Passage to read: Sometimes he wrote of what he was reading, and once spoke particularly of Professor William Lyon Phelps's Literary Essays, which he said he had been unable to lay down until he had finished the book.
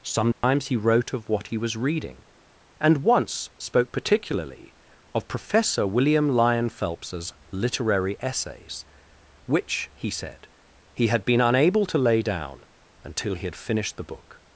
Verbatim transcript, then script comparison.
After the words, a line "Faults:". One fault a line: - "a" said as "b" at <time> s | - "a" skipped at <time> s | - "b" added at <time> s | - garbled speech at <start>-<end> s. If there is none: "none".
Sometimes he wrote of what he was reading, and once spoke particularly of Professor William Lyon Phelps's Literary Essays, which he said he had been unable to lay down until he had finished the book.
Faults:
none